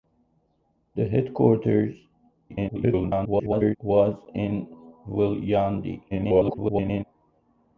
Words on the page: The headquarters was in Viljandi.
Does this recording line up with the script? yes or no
no